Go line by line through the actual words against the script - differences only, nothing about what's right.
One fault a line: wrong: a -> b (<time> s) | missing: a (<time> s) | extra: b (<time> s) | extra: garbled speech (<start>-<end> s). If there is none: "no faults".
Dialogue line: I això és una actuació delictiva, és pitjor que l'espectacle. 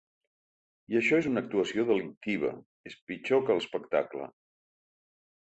no faults